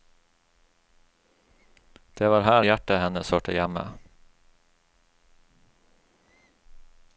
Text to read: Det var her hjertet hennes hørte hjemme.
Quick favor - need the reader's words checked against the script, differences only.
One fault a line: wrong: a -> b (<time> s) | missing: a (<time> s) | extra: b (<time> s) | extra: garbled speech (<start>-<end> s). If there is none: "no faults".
no faults